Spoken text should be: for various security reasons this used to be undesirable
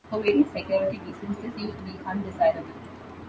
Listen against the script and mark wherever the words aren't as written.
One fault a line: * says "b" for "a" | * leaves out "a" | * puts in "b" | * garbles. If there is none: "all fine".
all fine